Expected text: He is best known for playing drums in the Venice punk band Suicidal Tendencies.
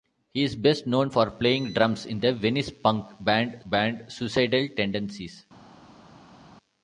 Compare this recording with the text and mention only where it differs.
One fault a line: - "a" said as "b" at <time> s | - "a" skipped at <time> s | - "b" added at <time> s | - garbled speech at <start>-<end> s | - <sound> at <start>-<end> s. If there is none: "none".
- "band" added at 3.6 s